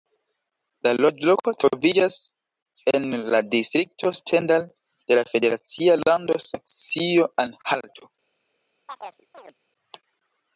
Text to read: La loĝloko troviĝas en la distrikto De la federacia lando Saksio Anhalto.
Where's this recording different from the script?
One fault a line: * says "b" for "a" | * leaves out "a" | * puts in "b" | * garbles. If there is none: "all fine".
* puts in "Stendal"